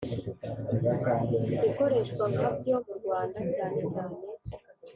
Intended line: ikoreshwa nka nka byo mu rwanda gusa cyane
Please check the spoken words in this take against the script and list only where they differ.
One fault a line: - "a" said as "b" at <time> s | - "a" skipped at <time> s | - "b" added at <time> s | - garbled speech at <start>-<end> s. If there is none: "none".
- "nka" skipped at 2.5 s
- "gusa" said as "cyane" at 3.6 s